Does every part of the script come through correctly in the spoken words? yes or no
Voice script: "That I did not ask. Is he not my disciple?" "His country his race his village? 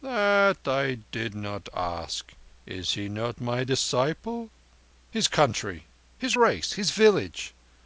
yes